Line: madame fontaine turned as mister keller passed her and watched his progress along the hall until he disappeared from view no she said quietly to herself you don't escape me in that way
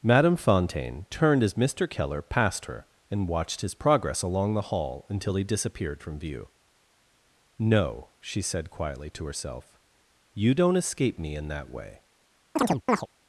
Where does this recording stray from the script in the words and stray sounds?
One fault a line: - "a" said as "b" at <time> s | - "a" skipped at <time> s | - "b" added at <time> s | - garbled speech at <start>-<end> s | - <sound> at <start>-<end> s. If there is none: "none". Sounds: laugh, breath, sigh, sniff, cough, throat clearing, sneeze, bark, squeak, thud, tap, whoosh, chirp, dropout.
- chirp at 12.6-13.1 s